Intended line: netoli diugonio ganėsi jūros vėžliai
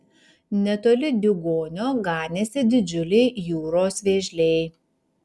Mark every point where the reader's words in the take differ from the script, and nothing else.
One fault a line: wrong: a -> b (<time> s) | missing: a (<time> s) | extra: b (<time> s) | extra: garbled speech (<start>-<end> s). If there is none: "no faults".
extra: didžiuliai (2.7 s)